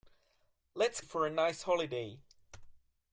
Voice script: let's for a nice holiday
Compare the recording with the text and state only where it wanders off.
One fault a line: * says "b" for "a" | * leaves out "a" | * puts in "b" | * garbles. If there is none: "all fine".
all fine